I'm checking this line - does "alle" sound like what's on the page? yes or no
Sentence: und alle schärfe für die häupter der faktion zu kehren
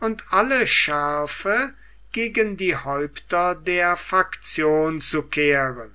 yes